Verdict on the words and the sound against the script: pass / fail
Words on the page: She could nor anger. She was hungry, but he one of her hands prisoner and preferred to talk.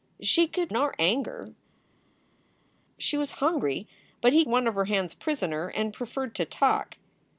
pass